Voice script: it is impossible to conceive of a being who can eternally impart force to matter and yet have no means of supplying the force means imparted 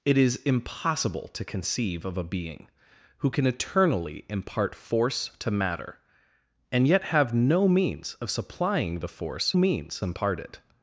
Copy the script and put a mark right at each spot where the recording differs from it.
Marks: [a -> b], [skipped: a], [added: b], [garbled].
it is impossible to conceive of a being who can eternally impart force to matter and yet have no means of supplying the force means imparted